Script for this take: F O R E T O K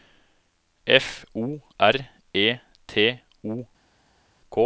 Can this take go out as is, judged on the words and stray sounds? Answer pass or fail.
pass